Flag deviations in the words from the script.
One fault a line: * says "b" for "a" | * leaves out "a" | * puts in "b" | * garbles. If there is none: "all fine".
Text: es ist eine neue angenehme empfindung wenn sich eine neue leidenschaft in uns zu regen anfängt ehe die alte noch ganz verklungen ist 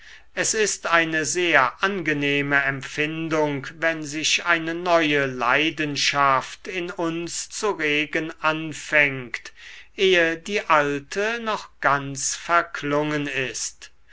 * says "sehr" for "neue"